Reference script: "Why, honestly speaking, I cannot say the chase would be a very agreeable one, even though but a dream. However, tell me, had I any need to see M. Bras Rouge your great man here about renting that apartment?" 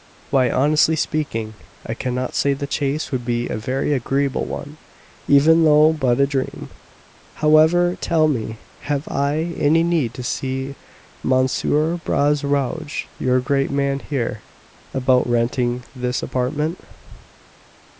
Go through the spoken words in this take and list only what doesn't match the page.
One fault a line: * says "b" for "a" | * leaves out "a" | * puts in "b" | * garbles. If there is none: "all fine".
* says "have" for "had"
* says "this" for "that"